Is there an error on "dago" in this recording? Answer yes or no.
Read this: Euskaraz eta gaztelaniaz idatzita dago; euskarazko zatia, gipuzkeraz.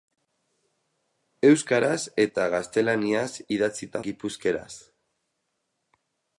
yes